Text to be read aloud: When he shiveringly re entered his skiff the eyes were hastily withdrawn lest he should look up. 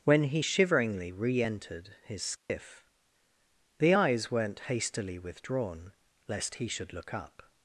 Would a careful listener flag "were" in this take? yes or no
yes